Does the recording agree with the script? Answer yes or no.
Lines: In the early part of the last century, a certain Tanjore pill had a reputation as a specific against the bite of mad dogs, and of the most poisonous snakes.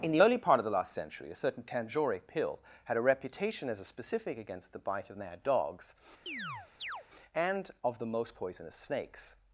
yes